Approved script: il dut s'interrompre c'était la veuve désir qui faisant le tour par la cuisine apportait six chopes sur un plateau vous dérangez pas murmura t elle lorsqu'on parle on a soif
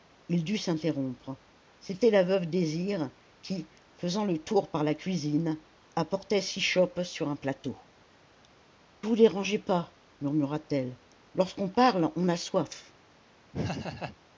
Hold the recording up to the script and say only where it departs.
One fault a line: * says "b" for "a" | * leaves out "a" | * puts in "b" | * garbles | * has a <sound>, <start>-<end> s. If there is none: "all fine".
* has a laugh, 13.5-14.2 s